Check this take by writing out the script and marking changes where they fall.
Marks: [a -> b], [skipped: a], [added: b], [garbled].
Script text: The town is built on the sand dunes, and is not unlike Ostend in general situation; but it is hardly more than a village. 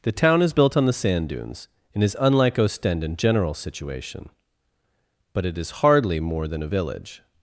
The town is built on the sand dunes, and is [skipped: not] unlike Ostend in general situation; but it is hardly more than a village.